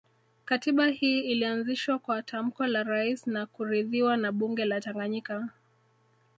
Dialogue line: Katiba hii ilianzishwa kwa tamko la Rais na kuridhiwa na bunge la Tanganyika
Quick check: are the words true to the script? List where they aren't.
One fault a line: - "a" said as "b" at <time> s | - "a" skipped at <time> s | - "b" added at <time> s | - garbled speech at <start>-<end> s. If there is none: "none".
none